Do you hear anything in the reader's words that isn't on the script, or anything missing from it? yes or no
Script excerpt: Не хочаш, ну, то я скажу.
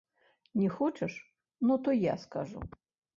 no